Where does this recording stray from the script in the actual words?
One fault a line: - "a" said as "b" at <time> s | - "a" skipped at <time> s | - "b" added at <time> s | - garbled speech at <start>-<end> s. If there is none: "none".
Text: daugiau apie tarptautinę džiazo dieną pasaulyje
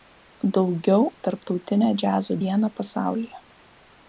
- "apie" skipped at 1.0 s